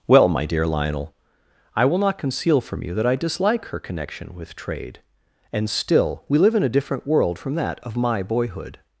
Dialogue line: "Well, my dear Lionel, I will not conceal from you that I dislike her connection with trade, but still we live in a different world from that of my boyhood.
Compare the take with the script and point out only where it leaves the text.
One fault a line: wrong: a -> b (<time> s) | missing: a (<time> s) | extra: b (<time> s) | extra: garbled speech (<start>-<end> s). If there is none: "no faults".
wrong: but -> and (5.5 s)